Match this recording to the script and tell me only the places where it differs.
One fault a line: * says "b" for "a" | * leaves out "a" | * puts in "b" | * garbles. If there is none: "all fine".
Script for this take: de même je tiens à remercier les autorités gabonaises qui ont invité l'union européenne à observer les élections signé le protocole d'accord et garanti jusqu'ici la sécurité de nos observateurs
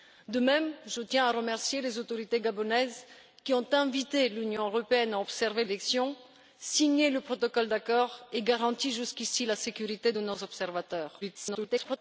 * leaves out "les"
* garbles